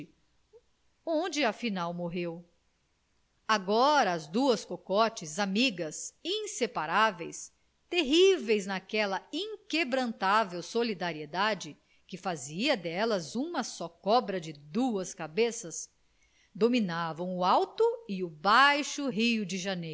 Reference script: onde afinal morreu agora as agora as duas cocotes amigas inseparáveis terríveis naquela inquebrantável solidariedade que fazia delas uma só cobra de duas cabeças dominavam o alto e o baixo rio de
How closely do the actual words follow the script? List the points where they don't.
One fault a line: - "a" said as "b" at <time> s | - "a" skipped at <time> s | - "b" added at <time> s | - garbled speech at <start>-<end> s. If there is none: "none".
- "agora as" skipped at 4.3 s